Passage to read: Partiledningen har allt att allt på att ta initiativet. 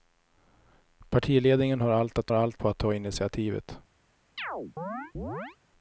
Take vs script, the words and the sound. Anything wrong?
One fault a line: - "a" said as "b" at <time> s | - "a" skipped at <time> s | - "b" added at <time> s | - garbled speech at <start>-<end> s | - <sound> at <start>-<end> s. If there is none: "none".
- chirp at 4.4-5.6 s